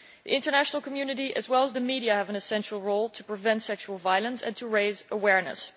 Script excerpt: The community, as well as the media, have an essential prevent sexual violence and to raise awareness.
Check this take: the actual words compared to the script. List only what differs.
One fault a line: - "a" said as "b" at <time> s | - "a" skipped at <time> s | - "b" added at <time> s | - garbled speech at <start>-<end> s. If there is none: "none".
- "international" added at 0.3 s
- "role to" added at 2.8 s